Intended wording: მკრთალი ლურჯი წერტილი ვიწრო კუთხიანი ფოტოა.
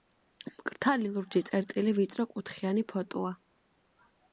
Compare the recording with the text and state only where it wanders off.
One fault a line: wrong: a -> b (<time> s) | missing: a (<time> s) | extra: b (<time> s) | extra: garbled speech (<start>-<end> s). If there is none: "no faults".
no faults